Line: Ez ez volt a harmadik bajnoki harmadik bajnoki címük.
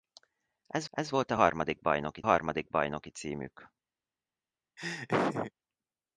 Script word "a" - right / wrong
right